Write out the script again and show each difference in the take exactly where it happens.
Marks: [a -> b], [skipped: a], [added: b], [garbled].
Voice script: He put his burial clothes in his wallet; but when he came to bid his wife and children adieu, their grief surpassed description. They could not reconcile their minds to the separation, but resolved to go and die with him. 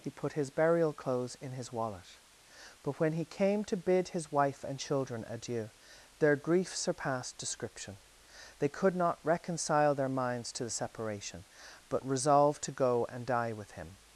He put his burial clothes in his wallet; but when he came to bid his wife and children adieu, their grief surpassed description. They could not reconcile their minds to the separation, but resolved to go and die with him.